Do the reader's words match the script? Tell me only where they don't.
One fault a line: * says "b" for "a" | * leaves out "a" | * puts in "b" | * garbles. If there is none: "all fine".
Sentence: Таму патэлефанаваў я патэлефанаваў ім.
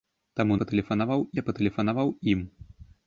all fine